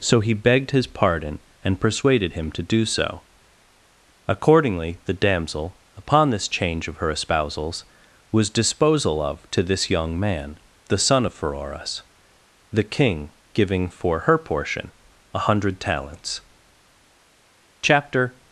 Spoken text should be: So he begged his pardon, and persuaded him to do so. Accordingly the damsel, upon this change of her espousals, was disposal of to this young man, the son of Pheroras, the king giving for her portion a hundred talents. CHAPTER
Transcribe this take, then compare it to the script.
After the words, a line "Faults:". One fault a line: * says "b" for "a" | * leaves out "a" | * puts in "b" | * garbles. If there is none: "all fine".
So he begged his pardon, and persuaded him to do so. Accordingly the damsel, upon this change of her espousals, was disposal of to this young man, the son of Pheroras, the king giving for her portion a hundred talents. CHAPTER
Faults:
all fine